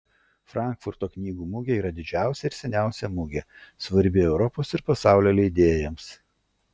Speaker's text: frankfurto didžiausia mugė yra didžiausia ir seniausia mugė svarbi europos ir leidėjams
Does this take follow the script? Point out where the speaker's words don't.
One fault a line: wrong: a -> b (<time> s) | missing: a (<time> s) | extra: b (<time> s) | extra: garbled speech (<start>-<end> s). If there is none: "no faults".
wrong: didžiausia -> knygų (1.1 s)
extra: pasaulio (4.9 s)